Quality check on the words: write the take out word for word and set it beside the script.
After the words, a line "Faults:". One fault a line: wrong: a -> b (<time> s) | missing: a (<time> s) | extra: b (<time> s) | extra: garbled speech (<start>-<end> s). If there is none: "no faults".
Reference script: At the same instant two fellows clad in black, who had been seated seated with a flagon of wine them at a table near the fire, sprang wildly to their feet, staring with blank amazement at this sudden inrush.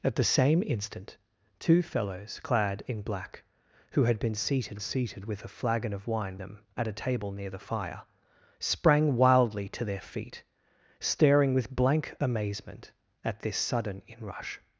At the same instant two fellows clad in black, who had been seated seated with a flagon of wine them at a table near the fire, sprang wildly to their feet, staring with blank amazement at this sudden inrush.
Faults:
no faults